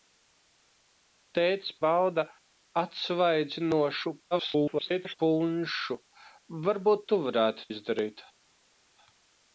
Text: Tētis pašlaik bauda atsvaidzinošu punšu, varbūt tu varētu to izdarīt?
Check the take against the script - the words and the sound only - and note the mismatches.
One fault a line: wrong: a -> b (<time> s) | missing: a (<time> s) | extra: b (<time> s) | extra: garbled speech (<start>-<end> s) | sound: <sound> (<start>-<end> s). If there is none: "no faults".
missing: pašlaik (1.7 s)
extra: garbled speech (4.3-5.2 s)
missing: to (7.7 s)